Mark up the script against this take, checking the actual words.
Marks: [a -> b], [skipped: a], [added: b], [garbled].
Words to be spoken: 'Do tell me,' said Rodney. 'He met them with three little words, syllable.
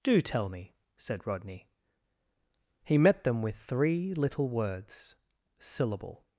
'Do tell me,' said Rodney. 'He met them with three little words, syllable.